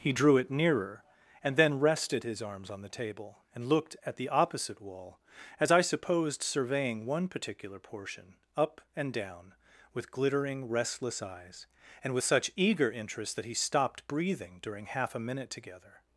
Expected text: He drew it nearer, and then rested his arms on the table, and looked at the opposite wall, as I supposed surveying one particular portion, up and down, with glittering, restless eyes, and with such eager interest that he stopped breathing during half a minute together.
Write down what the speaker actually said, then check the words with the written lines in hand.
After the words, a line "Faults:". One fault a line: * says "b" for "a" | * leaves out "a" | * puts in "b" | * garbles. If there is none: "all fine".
He drew it nearer, and then rested his arms on the table, and looked at the opposite wall, as I supposed surveying one particular portion, up and down, with glittering, restless eyes, and with such eager interest that he stopped breathing during half a minute together.
Faults:
all fine